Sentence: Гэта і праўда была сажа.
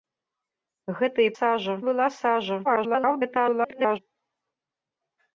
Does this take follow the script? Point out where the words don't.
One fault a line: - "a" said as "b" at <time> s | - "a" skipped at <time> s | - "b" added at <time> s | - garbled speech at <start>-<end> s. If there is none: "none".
- "праўда" said as "сажа" at 1.4 s
- garbled speech at 2.6-4.0 s